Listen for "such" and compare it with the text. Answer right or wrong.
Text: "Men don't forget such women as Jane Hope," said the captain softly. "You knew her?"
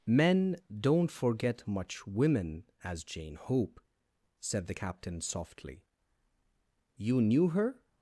wrong